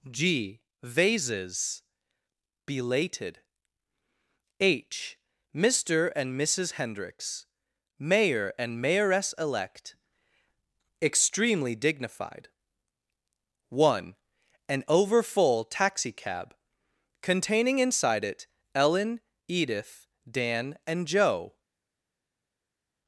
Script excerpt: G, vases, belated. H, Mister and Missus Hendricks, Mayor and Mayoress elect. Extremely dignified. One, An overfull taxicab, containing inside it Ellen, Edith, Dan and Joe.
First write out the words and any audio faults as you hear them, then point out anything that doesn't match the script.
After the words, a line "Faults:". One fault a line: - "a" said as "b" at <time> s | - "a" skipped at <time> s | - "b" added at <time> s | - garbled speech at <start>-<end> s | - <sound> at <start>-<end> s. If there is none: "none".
G, vases, belated. H, Mister and Missus Hendricks, Mayor and Mayoress elect. Extremely dignified. One, An overfull taxicab, containing inside it Ellen, Edith, Dan and Joe.
Faults:
none